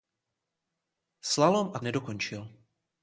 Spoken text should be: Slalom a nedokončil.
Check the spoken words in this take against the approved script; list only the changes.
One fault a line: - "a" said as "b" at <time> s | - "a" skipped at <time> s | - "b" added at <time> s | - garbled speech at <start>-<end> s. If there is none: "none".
none